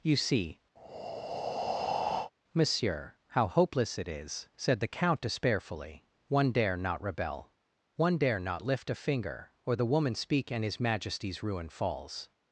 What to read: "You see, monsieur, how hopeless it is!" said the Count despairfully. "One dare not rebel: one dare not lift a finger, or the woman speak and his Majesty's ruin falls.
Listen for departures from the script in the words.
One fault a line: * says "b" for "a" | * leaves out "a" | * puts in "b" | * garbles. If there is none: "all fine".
all fine